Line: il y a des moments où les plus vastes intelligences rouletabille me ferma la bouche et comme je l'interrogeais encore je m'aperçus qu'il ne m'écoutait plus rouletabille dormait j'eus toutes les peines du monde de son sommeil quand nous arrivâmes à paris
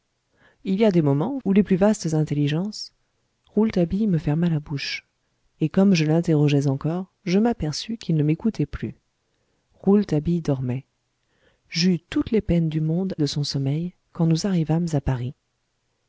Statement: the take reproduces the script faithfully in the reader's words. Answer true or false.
true